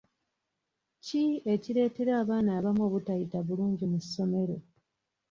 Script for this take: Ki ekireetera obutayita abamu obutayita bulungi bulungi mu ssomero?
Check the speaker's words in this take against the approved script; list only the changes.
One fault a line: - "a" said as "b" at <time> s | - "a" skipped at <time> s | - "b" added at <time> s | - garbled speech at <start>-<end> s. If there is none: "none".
- "obutayita" said as "abaana" at 2.2 s
- "bulungi" skipped at 3.9 s